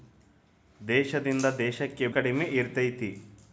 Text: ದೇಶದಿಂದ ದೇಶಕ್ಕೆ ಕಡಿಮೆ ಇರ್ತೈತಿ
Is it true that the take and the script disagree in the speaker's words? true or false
false